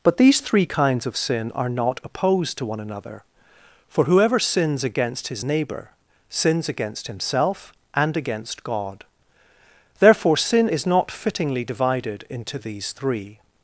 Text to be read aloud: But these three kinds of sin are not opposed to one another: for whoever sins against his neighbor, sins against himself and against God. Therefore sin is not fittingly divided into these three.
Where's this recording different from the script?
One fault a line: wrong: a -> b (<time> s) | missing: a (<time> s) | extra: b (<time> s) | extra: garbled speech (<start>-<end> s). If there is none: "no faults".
no faults